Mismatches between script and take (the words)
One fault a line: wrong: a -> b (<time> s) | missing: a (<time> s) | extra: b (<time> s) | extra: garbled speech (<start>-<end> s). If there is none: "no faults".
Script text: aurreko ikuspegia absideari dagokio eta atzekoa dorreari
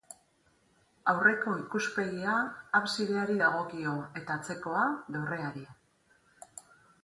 no faults